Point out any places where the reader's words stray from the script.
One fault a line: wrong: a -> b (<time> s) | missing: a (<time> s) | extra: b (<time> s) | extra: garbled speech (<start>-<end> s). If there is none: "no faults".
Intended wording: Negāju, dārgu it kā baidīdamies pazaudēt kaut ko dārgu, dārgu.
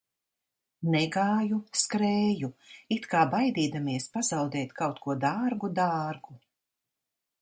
wrong: dārgu -> skrēju (1.8 s)